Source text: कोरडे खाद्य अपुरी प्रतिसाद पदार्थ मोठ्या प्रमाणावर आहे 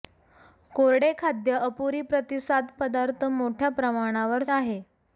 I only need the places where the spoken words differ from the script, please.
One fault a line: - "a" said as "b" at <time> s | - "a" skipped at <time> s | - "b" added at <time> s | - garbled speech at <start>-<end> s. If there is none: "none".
none